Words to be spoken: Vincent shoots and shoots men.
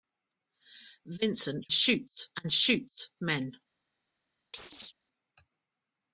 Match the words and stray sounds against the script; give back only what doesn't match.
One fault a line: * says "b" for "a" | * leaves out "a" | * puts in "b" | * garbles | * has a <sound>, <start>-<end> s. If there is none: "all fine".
* has a chirp, 4.5-4.9 s